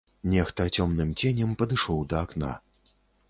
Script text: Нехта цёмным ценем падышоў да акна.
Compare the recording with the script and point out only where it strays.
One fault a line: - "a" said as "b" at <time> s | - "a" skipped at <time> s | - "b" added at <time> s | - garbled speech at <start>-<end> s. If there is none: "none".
none